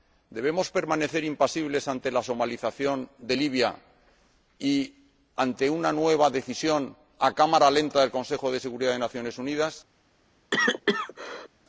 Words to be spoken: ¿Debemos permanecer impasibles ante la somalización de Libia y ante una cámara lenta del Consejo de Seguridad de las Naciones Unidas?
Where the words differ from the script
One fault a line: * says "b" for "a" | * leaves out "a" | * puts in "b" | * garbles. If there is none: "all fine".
* puts in "nueva decisión a"